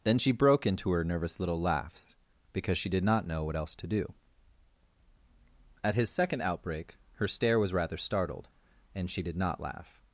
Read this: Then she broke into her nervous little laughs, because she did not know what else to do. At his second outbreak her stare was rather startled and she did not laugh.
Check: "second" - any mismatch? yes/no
no